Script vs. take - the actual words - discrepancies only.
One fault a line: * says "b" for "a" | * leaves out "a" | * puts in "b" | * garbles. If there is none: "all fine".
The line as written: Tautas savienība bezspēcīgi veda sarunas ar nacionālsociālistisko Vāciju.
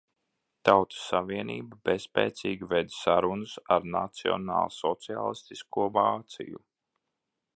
all fine